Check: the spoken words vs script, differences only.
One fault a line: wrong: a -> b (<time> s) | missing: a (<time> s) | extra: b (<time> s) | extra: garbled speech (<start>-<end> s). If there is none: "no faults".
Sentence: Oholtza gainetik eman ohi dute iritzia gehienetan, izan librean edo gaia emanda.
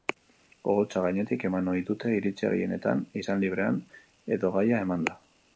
no faults